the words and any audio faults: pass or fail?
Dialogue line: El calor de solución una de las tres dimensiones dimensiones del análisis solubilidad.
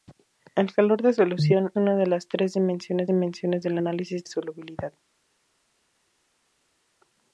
pass